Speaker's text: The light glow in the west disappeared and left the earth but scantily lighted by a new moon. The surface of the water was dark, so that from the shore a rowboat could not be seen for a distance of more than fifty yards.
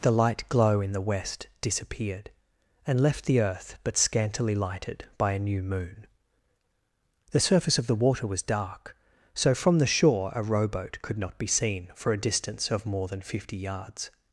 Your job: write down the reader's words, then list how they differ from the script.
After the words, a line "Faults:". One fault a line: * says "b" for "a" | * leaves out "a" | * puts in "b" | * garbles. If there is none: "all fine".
The light glow in the west disappeared and left the earth but scantily lighted by a new moon. The surface of the water was dark, so from the shore a rowboat could not be seen for a distance of more than fifty yards.
Faults:
* leaves out "that"